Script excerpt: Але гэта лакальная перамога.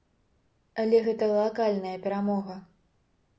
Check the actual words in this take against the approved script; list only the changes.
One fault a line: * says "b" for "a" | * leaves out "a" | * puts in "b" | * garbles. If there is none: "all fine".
all fine